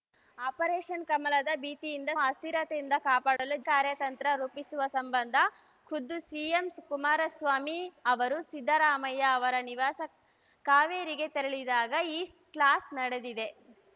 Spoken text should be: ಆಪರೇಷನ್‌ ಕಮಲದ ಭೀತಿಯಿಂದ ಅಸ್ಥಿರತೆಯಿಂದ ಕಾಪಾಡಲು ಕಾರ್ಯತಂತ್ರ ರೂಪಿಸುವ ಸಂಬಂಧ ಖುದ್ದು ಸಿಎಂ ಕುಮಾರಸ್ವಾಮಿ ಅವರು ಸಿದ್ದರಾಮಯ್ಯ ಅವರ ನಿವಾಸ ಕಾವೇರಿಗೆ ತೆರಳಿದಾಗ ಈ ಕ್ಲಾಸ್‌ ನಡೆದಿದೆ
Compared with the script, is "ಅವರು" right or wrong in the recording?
right